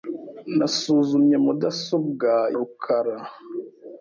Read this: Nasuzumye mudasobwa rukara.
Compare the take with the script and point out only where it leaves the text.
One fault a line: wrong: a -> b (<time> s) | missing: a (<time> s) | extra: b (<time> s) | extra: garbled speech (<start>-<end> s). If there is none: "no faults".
no faults